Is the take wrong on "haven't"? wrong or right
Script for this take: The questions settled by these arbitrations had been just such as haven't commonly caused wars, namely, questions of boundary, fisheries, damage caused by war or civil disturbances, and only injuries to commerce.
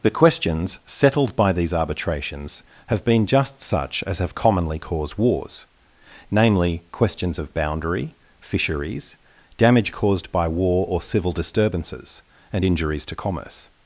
wrong